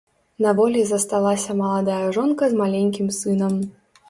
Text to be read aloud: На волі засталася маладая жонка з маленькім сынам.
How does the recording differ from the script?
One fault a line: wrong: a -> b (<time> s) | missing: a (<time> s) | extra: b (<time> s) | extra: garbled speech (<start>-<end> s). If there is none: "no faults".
no faults